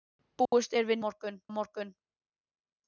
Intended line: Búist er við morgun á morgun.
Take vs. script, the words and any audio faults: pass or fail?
fail